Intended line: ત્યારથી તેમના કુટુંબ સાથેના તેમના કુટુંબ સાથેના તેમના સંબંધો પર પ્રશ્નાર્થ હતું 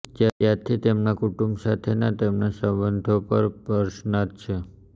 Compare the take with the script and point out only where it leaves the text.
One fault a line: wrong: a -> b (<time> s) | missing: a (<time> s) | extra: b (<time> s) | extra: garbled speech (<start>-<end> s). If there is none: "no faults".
missing: કુટુંબ સાથેના તેમના (2.5 s)
wrong: હતું -> છે (4.4 s)